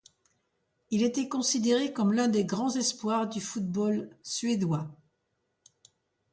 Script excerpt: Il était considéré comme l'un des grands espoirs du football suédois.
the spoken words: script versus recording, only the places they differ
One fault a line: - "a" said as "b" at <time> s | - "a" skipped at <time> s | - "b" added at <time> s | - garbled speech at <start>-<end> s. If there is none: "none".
none